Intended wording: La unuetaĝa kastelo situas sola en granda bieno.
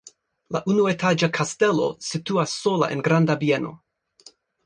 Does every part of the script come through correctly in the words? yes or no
yes